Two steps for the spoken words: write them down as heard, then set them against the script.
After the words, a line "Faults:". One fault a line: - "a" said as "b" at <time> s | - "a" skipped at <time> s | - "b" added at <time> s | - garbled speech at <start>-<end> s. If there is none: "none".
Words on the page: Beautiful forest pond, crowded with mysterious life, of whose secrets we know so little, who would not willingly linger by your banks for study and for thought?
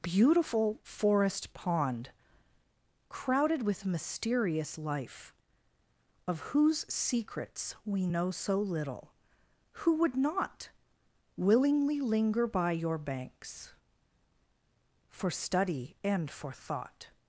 Beautiful forest pond, crowded with mysterious life, of whose secrets we know so little, who would not willingly linger by your banks for study and for thought?
Faults:
none